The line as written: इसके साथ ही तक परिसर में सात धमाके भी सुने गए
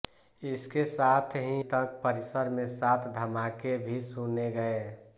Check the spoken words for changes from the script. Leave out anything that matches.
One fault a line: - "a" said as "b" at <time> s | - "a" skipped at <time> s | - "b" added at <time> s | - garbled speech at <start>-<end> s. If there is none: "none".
none